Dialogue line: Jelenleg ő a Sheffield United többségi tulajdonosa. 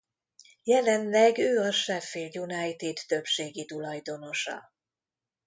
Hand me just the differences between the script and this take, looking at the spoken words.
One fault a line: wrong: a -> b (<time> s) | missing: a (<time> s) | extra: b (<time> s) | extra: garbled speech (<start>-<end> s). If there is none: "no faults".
no faults